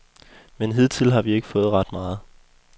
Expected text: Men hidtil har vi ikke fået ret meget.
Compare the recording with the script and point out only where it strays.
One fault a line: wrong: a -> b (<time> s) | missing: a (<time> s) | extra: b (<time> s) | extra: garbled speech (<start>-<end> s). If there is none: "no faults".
no faults